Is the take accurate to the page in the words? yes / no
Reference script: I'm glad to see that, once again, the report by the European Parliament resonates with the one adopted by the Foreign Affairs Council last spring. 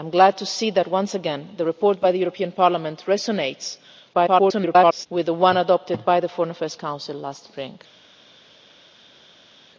no